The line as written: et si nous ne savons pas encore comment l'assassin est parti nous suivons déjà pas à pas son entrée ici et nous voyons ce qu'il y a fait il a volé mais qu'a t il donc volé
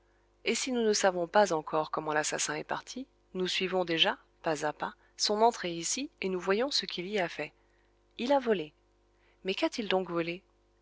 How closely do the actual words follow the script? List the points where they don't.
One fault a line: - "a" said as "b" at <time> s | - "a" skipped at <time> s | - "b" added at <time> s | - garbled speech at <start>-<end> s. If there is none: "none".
none